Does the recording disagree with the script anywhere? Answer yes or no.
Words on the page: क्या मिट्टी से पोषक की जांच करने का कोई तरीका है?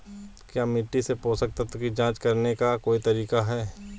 yes